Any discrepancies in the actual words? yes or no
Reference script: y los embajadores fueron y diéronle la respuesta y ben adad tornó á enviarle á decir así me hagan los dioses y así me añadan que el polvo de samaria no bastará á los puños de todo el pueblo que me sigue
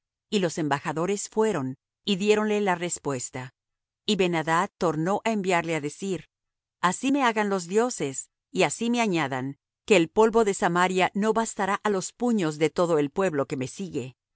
no